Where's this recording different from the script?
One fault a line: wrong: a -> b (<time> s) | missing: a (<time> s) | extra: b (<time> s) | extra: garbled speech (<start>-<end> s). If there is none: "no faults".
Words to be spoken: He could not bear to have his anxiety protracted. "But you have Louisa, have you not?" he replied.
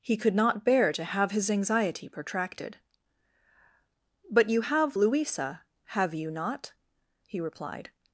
no faults